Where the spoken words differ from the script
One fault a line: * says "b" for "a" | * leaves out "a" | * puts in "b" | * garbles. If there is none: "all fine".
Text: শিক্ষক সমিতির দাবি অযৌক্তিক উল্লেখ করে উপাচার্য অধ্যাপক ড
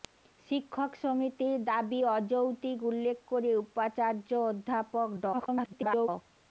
* garbles